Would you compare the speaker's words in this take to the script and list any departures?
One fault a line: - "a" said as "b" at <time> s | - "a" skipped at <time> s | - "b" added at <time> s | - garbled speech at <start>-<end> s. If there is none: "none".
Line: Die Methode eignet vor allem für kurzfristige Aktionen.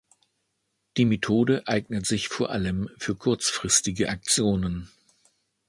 - "sich" added at 2.0 s